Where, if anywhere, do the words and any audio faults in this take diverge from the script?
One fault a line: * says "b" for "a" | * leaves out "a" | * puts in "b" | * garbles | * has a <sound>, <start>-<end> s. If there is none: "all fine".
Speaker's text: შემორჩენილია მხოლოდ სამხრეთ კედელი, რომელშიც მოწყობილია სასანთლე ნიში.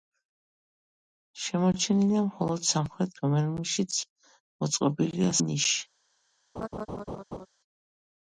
* leaves out "კედელი"
* leaves out "სასანთლე"
* has a laugh, 6.6-7.5 s